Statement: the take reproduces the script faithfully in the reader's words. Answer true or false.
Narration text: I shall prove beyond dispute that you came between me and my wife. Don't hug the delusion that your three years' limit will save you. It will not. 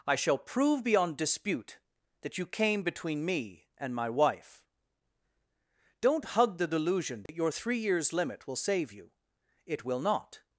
true